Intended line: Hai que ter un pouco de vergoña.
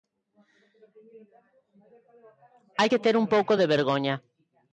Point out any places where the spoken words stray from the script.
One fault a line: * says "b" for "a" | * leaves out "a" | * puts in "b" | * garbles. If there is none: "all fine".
all fine